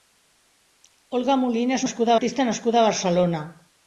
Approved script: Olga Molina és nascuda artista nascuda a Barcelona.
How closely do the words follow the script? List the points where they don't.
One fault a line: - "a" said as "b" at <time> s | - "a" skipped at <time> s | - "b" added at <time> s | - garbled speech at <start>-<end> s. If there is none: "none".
none